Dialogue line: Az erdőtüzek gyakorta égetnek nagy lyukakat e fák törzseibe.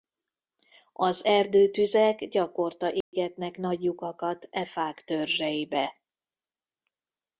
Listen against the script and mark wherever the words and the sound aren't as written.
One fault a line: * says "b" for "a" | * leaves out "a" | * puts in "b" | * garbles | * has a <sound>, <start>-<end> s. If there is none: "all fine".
* has a dropout, 3.0-3.1 s